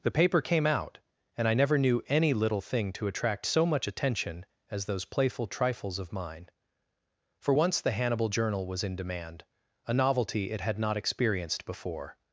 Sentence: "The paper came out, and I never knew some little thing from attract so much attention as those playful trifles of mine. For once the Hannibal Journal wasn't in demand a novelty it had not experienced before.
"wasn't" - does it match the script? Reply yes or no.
no